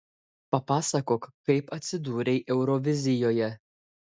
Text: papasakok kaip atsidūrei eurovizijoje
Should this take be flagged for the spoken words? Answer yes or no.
no